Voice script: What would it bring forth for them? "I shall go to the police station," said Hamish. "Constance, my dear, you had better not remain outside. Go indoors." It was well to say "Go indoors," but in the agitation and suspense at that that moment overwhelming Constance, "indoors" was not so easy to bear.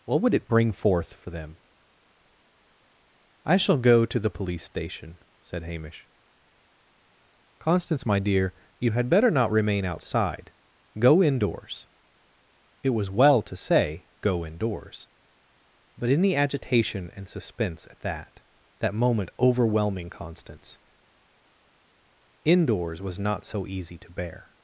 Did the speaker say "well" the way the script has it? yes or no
yes